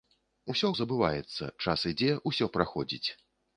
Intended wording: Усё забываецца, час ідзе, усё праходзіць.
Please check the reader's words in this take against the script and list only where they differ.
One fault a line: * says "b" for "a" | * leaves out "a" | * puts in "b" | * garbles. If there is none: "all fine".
all fine